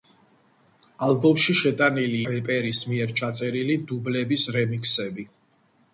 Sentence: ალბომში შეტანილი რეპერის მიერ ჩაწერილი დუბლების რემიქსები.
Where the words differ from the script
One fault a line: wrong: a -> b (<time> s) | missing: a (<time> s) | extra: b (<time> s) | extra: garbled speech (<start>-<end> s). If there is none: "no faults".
no faults